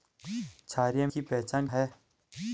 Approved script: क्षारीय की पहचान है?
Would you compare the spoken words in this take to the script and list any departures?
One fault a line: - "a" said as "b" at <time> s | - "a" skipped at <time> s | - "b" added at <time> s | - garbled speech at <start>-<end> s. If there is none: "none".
none